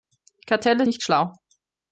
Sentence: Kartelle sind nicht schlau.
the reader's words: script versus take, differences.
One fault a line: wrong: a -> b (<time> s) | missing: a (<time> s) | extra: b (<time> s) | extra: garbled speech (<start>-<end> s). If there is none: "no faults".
missing: sind (0.9 s)